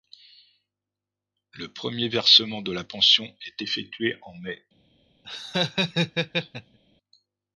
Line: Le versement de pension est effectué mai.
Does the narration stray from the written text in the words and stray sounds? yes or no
yes